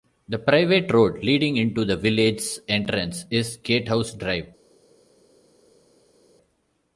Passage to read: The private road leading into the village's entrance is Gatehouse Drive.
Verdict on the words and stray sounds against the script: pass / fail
pass